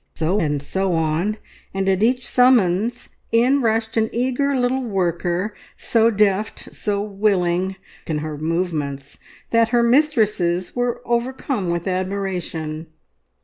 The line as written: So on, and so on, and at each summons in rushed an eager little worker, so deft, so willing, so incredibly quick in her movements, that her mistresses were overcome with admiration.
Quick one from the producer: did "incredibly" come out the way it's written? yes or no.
no